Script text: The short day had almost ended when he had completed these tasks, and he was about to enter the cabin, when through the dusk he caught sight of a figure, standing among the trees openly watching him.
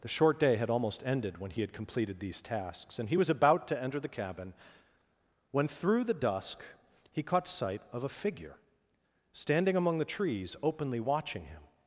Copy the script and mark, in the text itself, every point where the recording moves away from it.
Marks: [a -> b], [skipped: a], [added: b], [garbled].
The short day had almost ended when he had completed these tasks, and he was about to enter the cabin, when through the dusk he caught sight of a figure, standing among the trees openly watching him.